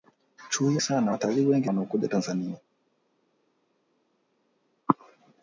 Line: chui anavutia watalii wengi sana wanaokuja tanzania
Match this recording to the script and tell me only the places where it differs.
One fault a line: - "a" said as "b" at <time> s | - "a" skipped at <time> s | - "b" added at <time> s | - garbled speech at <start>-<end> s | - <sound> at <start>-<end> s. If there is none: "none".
- "anavutia" said as "sana" at 0.8 s
- "sana" skipped at 1.7 s